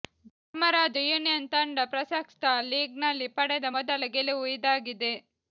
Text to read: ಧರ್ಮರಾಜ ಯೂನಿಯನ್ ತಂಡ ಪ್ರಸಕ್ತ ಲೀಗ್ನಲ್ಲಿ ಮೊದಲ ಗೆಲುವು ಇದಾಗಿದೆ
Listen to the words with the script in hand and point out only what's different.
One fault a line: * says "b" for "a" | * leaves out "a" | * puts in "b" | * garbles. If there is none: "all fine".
* puts in "ಪಡೆದ"